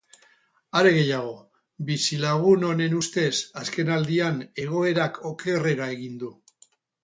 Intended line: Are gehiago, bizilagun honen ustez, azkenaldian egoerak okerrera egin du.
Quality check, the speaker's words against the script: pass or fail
pass